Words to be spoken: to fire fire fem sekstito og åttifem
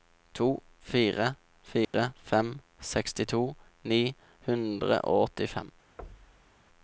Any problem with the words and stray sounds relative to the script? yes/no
yes